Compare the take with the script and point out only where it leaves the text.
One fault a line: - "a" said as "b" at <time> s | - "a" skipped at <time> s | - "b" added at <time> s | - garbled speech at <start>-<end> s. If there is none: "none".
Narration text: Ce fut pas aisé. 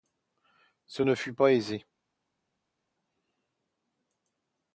- "ne" added at 1.0 s